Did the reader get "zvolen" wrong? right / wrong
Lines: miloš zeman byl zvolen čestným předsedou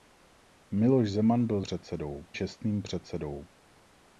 wrong